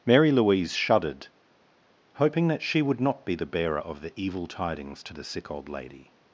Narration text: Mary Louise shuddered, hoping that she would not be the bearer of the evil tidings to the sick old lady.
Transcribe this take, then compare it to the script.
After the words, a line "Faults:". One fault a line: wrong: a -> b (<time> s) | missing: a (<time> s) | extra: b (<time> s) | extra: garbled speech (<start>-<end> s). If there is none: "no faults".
Mary Louise shuddered, hoping that she would not be the bearer of the evil tidings to the sick old lady.
Faults:
no faults